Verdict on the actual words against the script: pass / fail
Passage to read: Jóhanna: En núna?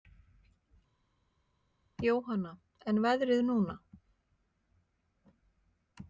fail